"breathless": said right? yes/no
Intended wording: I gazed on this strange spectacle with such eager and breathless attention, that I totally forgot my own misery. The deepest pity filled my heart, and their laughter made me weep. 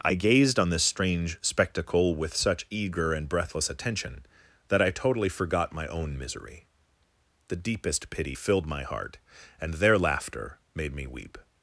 yes